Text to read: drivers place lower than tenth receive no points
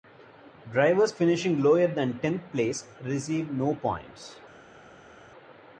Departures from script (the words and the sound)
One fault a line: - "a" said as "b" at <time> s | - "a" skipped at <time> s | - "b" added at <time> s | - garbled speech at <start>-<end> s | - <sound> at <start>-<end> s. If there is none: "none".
- "place" said as "finishing" at 1.1 s
- "place" added at 2.5 s